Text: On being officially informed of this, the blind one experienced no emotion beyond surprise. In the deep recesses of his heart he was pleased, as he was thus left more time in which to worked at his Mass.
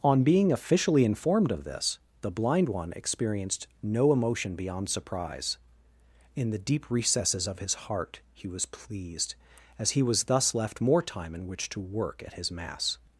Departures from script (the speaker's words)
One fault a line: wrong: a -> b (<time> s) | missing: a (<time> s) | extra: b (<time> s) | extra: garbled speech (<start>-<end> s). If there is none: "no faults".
wrong: worked -> work (11.8 s)